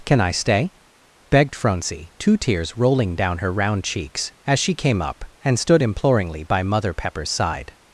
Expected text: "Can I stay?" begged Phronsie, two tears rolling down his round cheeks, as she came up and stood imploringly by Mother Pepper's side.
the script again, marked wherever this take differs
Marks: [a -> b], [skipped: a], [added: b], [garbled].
"Can I stay?" begged Phronsie, two tears rolling down [his -> her] round cheeks, as she came up and stood imploringly by Mother Pepper's side.